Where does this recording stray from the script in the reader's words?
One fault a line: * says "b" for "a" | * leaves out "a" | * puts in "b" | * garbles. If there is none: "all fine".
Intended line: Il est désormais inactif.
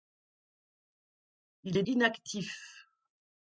* leaves out "désormais"